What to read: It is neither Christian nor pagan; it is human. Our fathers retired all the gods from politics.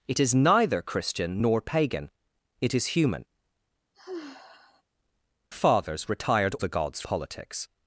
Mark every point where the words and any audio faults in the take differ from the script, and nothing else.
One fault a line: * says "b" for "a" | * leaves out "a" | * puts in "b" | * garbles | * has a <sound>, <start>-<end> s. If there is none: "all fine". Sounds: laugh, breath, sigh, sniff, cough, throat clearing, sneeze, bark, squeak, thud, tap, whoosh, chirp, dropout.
* leaves out "Our"
* has a sigh, 3.9-4.8 s
* leaves out "all"
* leaves out "from"